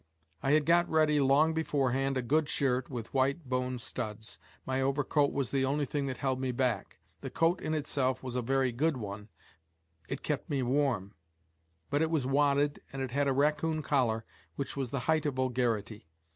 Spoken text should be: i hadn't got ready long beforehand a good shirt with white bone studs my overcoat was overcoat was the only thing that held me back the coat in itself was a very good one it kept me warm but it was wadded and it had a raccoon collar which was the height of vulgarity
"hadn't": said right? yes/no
no